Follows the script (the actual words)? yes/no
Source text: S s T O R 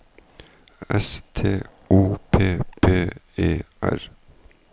no